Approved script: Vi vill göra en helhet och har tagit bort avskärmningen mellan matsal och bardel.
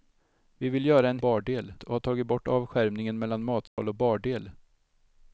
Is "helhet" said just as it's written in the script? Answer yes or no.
no